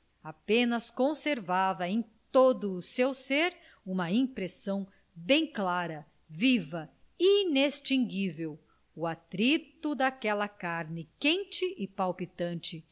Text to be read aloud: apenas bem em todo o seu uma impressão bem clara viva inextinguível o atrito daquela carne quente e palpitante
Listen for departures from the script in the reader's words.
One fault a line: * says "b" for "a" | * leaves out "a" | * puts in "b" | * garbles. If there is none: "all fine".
* says "conservava" for "bem"
* puts in "ser"